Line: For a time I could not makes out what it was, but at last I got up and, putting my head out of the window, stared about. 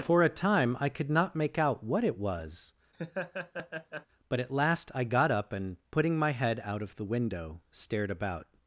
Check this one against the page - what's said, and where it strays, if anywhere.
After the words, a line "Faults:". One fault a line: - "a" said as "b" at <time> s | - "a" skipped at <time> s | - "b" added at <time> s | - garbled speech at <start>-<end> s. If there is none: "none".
For a time I could not make out what it was, but at last I got up and, putting my head out of the window, stared about.
Faults:
- "makes" said as "make" at 1.4 s